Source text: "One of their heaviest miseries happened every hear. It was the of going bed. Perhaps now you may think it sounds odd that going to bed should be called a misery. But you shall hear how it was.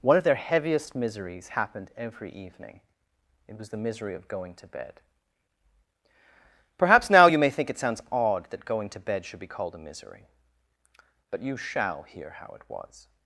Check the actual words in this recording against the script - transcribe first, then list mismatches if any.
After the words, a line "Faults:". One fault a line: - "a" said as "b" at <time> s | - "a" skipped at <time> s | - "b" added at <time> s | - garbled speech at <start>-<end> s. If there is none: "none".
"One of their heaviest miseries happened every evening. It was the misery of going to bed. Perhaps now you may think it sounds odd that going to bed should be called a misery. But you shall hear how it was.
Faults:
- "hear" said as "evening" at 2.3 s
- "misery" added at 3.8 s
- "to" added at 4.5 s